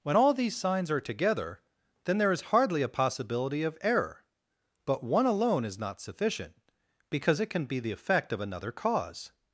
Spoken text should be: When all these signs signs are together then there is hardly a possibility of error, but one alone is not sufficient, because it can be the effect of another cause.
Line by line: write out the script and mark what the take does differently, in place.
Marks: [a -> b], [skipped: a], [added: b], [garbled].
When all these signs [skipped: signs] are together then there is hardly a possibility of error, but one alone is not sufficient, because it can be the effect of another cause.